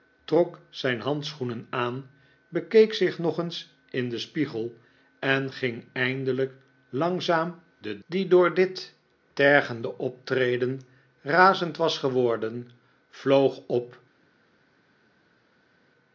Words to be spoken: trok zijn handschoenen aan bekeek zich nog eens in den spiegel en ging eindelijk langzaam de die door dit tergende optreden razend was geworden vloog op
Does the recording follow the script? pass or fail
pass